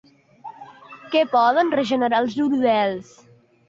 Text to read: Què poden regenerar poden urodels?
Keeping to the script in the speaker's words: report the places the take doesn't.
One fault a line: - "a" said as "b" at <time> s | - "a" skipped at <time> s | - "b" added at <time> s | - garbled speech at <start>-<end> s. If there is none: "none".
- "poden" said as "els" at 2.3 s